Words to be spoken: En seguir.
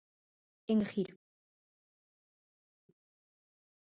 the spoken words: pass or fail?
pass